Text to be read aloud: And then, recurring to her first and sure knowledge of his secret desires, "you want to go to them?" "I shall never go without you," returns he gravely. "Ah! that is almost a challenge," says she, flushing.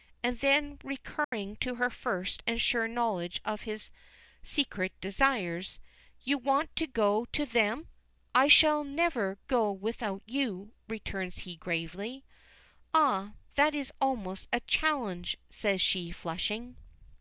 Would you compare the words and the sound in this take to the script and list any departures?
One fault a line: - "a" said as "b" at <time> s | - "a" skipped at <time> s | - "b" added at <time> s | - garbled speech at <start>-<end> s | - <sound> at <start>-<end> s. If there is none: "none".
- dropout at 1.2-1.3 s